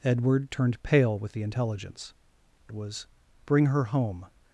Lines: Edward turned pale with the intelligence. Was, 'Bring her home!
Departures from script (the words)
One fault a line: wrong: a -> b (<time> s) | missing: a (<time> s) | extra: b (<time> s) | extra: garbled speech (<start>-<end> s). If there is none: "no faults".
no faults